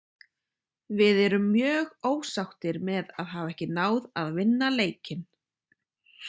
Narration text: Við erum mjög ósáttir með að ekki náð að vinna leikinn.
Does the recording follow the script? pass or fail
fail